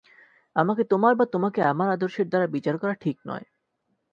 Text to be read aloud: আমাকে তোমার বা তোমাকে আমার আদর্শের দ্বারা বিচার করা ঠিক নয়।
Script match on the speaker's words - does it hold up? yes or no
yes